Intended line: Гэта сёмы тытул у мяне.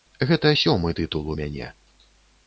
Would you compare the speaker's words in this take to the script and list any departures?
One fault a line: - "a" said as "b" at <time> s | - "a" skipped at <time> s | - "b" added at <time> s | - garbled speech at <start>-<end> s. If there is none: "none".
none